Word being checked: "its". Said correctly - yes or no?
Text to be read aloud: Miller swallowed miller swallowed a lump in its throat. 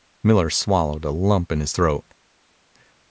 no